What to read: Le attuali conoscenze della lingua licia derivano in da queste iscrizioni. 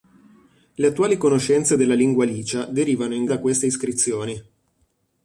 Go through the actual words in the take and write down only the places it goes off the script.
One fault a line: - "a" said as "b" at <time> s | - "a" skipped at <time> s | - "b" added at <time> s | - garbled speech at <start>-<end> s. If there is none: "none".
none